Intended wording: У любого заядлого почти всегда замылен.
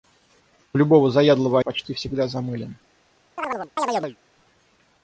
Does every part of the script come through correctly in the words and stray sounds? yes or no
no